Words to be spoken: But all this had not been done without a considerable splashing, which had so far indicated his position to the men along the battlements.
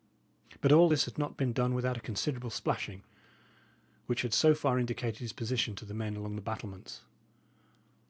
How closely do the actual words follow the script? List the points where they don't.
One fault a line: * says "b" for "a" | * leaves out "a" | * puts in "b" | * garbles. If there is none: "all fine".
all fine